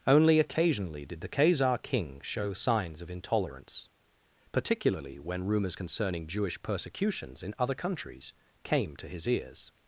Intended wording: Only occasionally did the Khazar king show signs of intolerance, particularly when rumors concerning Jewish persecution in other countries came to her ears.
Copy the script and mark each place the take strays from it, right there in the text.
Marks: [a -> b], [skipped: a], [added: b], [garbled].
Only occasionally did the Khazar king show signs of intolerance, particularly when rumors concerning Jewish [persecution -> persecutions] in other countries came to [her -> his] ears.